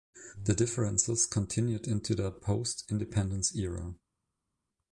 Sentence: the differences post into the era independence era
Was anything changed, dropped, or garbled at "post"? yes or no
yes